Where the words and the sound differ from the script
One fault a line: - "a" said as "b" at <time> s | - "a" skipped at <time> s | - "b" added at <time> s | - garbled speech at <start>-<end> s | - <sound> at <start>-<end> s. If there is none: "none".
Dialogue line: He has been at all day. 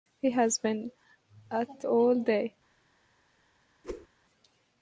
- whoosh at 3.8-4.1 s